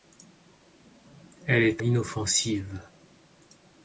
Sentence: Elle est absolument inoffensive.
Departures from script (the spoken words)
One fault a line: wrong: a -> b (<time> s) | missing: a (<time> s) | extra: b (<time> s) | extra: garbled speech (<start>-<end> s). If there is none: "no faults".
missing: absolument (1.8 s)